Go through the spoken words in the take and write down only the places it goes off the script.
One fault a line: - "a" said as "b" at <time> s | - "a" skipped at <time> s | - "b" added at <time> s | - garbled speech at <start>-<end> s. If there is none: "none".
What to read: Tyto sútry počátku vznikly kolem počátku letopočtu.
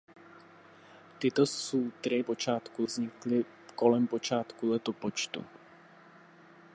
none